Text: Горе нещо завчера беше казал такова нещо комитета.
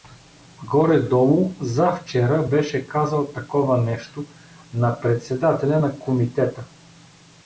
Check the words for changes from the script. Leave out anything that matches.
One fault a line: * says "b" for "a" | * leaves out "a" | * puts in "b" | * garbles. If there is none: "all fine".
* says "долу" for "нещо"
* puts in "на председателя на"